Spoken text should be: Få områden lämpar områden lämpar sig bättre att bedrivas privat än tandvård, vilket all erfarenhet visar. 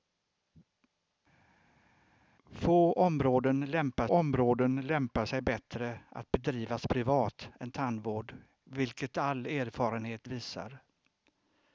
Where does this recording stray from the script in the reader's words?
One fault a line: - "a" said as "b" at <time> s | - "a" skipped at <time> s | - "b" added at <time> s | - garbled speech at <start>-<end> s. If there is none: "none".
none